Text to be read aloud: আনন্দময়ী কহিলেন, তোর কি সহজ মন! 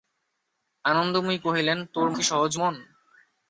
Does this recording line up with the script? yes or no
yes